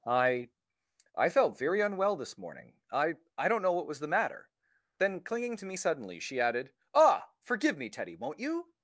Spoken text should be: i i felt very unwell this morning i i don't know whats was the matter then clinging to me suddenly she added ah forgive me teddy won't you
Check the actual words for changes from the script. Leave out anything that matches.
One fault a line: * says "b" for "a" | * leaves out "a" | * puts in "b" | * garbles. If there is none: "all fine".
* says "what" for "whats"